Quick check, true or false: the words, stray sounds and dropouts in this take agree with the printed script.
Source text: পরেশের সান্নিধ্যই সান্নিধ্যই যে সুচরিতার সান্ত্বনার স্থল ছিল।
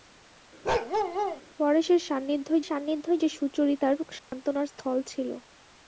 false